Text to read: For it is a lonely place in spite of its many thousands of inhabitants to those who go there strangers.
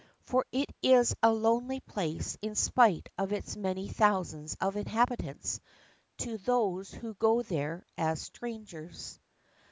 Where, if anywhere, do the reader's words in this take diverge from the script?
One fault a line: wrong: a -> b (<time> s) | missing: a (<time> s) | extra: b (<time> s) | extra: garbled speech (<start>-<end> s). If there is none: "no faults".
extra: as (8.0 s)